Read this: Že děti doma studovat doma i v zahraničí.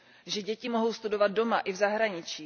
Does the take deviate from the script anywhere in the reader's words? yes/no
yes